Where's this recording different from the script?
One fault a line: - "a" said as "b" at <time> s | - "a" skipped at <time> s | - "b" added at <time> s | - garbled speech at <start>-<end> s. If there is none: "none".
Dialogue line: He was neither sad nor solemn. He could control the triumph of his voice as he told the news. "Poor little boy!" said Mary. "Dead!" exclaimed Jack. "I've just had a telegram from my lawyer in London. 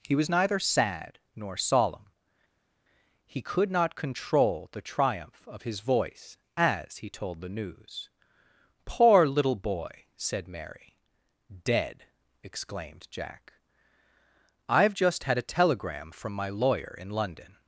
- "not" added at 3.7 s